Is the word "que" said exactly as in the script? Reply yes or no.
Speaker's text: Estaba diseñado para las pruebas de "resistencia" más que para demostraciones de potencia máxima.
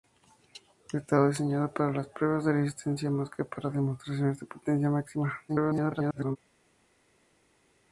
yes